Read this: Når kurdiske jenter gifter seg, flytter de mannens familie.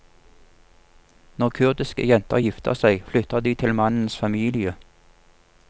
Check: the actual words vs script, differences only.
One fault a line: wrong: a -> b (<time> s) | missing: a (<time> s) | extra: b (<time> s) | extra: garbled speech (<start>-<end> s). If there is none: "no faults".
extra: til (3.6 s)